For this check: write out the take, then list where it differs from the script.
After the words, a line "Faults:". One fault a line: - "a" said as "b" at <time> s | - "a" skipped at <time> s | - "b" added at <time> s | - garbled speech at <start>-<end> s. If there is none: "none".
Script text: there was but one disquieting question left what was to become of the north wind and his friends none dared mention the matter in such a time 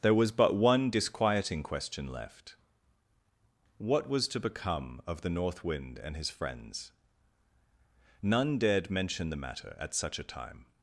there was but one disquieting question left what was to become of the north wind and his friends none dared mention the matter at such a time
Faults:
- "in" said as "at" at 9.8 s